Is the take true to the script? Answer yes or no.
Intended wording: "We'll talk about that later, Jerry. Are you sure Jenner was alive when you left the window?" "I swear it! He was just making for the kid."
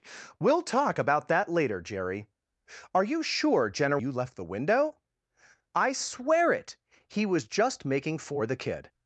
no